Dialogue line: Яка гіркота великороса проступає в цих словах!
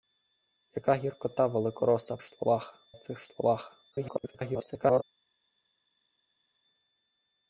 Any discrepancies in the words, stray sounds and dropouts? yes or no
yes